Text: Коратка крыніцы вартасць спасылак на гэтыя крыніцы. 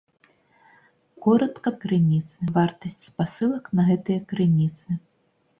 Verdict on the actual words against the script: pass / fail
pass